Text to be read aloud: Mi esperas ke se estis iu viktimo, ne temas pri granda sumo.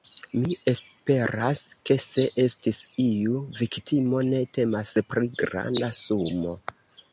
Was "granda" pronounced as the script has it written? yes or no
yes